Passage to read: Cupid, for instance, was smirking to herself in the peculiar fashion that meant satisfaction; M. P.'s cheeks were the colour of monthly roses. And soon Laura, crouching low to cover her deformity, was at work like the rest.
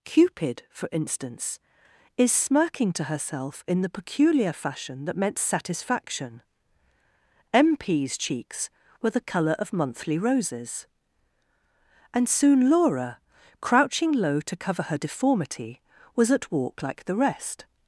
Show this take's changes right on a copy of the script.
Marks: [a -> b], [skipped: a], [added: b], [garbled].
Cupid, for instance, [was -> is] smirking to herself in the peculiar fashion that meant satisfaction; M. P.'s cheeks were the colour of monthly roses. And soon Laura, crouching low to cover her deformity, was at [work -> walk] like the rest.